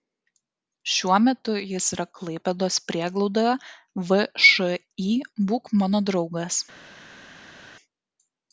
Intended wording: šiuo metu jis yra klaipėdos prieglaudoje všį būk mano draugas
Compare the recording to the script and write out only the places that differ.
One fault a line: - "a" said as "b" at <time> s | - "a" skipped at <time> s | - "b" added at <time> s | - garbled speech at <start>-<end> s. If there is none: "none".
none